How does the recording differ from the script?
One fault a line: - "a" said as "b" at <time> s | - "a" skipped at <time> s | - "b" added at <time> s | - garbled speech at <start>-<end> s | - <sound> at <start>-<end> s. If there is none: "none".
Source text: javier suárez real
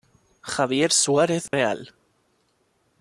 - dropout at 1.5-1.5 s